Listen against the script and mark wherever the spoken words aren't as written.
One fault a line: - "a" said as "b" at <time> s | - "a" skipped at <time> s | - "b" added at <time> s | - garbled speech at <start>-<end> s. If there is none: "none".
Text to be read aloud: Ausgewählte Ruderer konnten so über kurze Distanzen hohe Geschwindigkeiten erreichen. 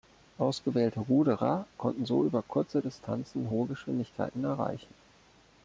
none